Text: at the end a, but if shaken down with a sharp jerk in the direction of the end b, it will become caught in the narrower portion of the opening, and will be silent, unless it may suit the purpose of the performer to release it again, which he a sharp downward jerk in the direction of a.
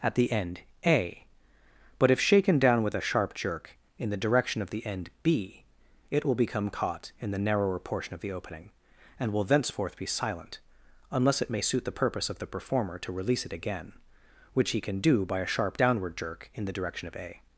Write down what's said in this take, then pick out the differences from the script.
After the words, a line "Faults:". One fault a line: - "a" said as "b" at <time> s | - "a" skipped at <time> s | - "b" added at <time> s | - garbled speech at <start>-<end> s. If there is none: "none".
at the end a, but if shaken down with a sharp jerk in the direction of the end b, it will become caught in the narrower portion of the opening, and will thenceforth be silent, unless it may suit the purpose of the performer to release it again, which he can do by a sharp downward jerk in the direction of a.
Faults:
- "thenceforth" added at 9.4 s
- "can do by" added at 14.8 s